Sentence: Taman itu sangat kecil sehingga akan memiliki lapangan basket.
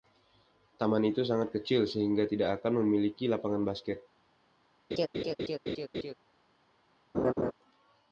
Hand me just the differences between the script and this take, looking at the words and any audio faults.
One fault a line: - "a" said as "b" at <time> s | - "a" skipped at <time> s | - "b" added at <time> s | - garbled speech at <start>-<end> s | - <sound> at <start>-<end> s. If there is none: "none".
- "tidak" added at 2.2 s
- laugh at 4.9-6.1 s
- laugh at 7.1-7.5 s